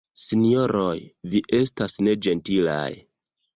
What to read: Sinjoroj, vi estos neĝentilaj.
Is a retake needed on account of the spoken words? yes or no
yes